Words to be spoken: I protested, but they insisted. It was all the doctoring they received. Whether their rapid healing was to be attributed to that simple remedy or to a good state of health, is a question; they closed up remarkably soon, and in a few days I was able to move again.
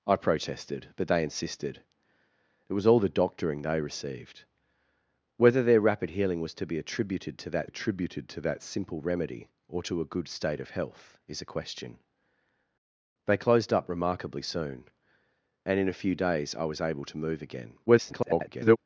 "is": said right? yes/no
yes